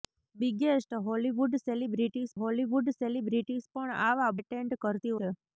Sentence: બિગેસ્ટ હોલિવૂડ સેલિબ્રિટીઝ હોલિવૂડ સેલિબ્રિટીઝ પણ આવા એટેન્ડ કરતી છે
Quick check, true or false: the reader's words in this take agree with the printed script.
true